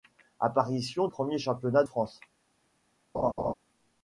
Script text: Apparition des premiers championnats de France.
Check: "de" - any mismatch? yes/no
yes